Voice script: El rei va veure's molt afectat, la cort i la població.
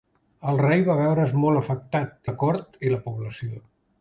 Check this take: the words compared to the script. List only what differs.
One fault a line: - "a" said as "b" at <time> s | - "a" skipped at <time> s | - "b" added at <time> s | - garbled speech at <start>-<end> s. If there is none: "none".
none